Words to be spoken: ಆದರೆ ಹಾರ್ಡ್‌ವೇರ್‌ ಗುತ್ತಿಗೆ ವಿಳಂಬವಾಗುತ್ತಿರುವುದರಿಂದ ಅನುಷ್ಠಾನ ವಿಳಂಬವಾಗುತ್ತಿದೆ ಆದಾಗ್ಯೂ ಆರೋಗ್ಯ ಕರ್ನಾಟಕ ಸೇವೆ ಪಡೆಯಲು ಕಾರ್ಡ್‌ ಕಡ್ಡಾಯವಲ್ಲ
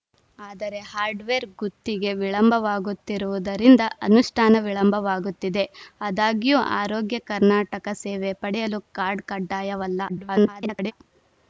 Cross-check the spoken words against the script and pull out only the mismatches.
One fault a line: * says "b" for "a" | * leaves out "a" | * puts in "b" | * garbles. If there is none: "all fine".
* garbles